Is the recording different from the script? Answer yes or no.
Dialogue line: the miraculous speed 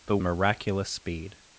no